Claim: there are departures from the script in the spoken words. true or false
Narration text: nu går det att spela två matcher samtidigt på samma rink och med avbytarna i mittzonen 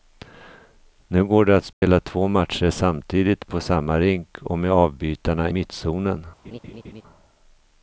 true